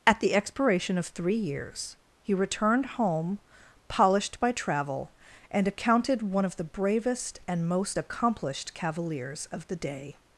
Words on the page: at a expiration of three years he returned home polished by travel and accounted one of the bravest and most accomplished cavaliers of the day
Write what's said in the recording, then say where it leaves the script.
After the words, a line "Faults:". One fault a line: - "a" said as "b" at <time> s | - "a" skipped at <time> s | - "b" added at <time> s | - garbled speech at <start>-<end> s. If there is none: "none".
at the expiration of three years he returned home polished by travel and accounted one of the bravest and most accomplished cavaliers of the day
Faults:
- "a" said as "the" at 0.2 s